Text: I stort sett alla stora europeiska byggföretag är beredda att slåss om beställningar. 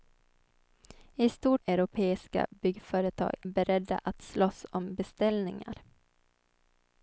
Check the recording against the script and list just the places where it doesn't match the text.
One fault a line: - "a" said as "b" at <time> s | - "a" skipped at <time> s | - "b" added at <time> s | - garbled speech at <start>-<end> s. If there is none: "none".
- "sett alla stora" skipped at 1.6 s
- "är" skipped at 3.3 s